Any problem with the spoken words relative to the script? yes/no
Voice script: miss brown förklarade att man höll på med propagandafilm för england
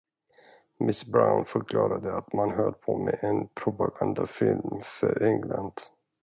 yes